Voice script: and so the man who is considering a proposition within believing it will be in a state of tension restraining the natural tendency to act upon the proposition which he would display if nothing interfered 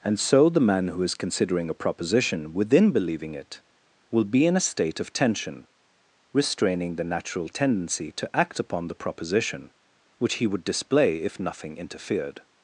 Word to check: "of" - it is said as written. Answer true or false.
true